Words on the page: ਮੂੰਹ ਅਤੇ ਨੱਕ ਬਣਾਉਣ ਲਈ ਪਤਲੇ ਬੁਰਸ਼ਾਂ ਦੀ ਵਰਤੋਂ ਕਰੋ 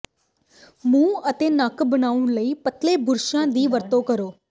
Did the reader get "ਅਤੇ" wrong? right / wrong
right